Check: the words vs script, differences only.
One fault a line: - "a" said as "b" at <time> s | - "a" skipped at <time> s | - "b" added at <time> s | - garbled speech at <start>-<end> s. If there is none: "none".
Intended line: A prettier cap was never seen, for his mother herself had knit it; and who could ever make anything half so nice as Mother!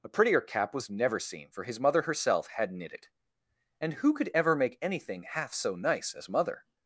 none